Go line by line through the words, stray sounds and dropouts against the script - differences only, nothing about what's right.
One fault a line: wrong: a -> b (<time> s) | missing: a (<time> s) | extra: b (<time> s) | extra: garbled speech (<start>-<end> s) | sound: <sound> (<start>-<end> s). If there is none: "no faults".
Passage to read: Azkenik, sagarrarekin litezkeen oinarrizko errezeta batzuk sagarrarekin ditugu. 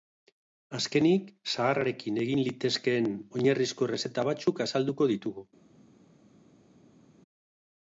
extra: egin (2.2 s)
wrong: sagarrarekin -> azalduko (4.7 s)